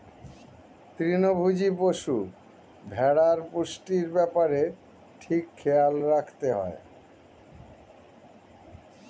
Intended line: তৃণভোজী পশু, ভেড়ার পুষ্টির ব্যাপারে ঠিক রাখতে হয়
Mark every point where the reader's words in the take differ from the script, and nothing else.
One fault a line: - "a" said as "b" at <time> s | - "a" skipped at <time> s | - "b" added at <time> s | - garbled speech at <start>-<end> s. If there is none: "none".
- "খেয়াল" added at 5.6 s